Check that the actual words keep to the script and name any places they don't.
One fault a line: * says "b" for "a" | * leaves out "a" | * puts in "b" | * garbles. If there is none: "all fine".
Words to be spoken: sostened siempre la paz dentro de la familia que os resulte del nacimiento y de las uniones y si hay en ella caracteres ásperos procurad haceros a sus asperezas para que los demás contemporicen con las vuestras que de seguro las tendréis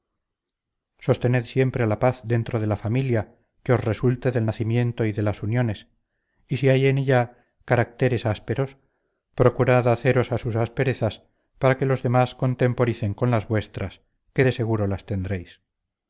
all fine